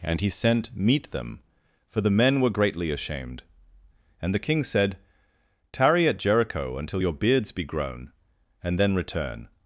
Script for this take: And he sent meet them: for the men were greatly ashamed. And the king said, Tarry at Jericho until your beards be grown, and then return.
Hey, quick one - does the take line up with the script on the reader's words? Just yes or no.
yes